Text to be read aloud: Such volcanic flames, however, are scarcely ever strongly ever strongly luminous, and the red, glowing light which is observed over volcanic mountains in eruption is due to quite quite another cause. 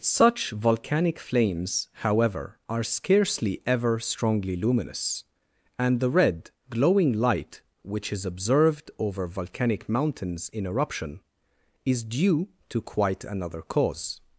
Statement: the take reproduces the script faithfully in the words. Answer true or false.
false